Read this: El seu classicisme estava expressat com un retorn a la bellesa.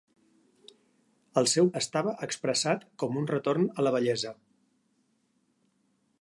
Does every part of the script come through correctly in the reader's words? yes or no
no